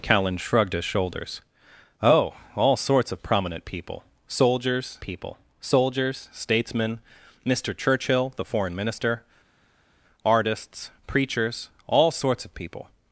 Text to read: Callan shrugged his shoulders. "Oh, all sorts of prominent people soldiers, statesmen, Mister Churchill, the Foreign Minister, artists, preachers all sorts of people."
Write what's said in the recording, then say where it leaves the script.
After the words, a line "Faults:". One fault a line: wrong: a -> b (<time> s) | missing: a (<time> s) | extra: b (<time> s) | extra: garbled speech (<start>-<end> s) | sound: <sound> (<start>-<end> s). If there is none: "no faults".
Callan shrugged his shoulders. "Oh, all sorts of prominent people soldiers people soldiers, statesmen, Mister Churchill, the Foreign Minister, artists, preachers all sorts of people."
Faults:
extra: people soldiers (5.0 s)